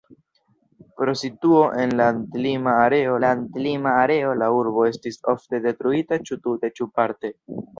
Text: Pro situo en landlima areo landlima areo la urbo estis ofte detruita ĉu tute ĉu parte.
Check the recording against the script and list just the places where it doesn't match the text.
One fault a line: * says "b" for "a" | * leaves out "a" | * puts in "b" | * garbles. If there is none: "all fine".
all fine